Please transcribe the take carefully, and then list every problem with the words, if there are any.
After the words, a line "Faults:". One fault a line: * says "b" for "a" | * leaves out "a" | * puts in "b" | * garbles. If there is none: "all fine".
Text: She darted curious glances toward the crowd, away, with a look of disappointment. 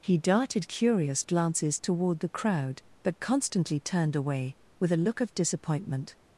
He darted curious glances toward the crowd, but constantly turned away, with a look of disappointment.
Faults:
* says "He" for "She"
* puts in "but constantly turned"